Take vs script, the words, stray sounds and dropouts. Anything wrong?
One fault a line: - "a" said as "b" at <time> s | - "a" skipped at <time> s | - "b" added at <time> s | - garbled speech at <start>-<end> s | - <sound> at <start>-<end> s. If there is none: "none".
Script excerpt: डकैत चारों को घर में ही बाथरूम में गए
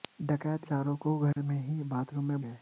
- dropout at 1.3-1.4 s